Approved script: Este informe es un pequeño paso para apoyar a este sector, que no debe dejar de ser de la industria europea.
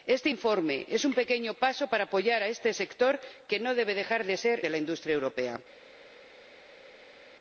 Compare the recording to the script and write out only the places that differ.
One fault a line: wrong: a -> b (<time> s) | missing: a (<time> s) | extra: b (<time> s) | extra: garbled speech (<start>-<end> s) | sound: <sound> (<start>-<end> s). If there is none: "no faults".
no faults